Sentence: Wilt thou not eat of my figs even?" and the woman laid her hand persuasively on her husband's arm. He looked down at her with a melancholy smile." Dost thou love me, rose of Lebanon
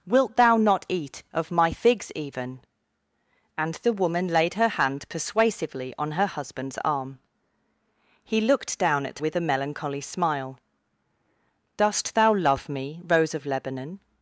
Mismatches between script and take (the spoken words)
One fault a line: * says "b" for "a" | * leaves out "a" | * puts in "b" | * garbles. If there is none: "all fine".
* leaves out "her"